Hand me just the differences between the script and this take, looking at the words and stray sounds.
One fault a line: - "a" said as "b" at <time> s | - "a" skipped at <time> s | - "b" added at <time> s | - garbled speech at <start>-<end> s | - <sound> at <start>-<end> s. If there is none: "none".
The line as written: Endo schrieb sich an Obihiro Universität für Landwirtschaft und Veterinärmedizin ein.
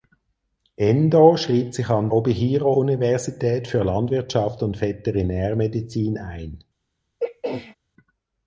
- throat clearing at 7.2-7.8 s